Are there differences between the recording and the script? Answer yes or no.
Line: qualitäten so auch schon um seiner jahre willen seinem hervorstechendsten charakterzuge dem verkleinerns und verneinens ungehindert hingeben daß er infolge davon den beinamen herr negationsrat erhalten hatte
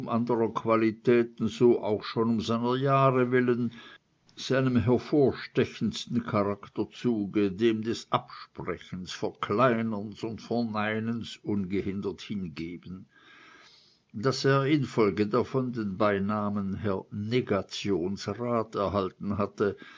yes